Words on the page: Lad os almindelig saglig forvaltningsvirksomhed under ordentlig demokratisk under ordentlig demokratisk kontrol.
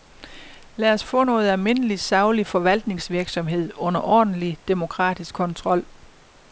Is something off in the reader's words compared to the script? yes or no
yes